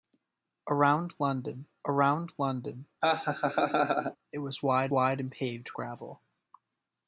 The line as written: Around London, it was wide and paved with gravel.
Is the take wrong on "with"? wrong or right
wrong